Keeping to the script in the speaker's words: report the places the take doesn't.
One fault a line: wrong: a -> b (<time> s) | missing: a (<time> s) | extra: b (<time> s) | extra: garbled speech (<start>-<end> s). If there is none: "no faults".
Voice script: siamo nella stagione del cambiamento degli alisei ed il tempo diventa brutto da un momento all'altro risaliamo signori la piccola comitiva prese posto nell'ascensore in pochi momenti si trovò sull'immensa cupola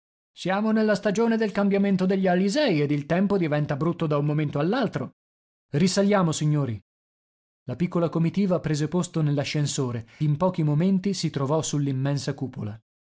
no faults